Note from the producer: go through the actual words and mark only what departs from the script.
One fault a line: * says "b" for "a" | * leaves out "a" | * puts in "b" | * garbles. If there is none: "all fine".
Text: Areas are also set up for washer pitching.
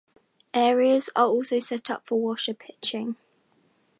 all fine